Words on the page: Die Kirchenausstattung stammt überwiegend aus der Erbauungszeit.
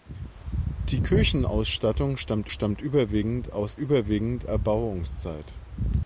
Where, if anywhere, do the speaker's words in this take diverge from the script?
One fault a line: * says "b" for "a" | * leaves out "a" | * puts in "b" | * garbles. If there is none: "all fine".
* puts in "stammt"
* says "überwiegend" for "der"